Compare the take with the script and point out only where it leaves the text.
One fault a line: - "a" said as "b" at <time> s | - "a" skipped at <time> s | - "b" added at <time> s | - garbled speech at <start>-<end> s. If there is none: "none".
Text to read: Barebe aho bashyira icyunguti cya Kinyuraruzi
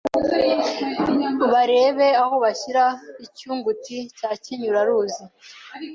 none